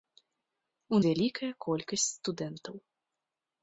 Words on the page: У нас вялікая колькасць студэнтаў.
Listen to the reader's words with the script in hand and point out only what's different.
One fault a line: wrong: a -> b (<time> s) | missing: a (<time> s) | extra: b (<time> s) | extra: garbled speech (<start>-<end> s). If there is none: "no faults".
missing: нас (1.0 s)